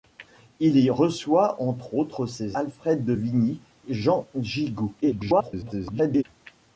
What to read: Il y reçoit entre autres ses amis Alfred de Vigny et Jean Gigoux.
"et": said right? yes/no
no